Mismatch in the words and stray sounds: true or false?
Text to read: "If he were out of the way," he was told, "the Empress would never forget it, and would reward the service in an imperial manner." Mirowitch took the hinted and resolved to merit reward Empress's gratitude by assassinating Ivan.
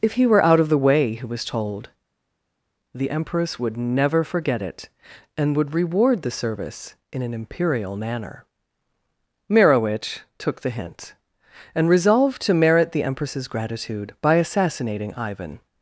true